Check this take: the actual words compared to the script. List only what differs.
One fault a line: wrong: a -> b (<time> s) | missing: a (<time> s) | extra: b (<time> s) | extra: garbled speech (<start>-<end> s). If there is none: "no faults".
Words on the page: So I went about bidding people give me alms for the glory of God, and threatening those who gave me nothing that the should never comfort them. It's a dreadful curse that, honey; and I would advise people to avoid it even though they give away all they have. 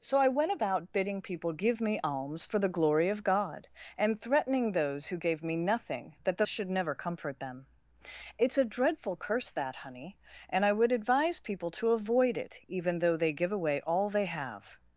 no faults